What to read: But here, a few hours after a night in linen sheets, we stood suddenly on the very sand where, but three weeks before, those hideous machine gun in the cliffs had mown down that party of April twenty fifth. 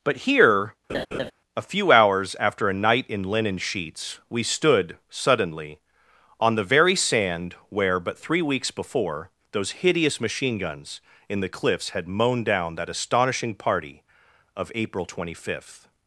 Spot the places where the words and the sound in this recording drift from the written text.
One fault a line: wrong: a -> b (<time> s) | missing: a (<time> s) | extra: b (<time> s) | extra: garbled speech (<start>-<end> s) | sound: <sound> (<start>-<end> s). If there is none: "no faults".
sound: laugh (0.9-1.3 s)
wrong: gun -> guns (10.6 s)
extra: astonishing (12.9 s)